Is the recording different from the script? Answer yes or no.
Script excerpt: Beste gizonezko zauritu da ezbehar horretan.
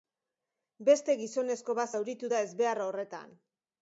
yes